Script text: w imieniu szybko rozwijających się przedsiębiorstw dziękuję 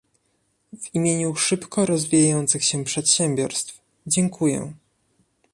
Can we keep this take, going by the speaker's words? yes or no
yes